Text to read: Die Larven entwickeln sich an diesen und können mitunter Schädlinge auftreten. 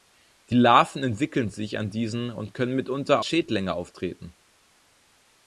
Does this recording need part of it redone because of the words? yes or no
no